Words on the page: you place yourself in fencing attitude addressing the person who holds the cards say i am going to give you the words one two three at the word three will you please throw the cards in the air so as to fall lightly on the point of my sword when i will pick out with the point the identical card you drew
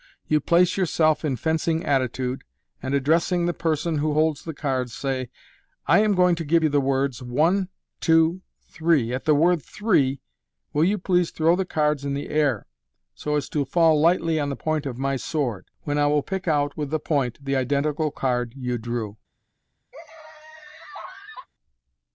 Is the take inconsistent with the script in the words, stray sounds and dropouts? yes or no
yes